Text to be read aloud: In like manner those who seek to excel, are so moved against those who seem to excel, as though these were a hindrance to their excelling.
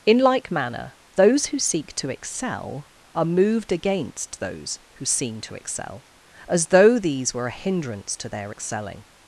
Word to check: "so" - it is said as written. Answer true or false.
false